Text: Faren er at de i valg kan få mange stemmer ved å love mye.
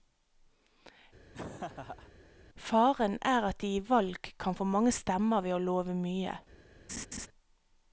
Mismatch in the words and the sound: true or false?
true